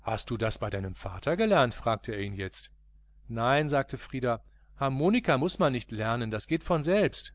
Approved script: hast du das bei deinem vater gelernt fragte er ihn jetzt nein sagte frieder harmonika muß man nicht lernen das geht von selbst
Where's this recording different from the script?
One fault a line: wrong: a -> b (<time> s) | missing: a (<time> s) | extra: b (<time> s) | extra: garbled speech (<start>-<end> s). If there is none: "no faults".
no faults